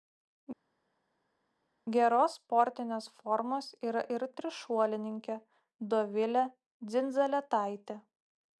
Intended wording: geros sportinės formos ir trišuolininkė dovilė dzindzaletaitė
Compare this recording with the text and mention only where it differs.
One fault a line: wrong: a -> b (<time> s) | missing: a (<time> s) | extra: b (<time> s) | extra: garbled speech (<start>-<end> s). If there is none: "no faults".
extra: yra (3.9 s)